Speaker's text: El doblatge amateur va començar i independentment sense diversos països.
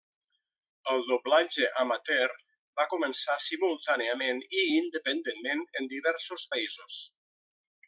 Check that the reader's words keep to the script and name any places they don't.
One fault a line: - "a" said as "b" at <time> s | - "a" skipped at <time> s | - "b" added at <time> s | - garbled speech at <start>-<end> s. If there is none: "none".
- "simultàniament" added at 3.5 s
- "sense" said as "en" at 5.8 s